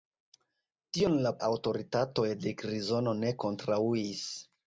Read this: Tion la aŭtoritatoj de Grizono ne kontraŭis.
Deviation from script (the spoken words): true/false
false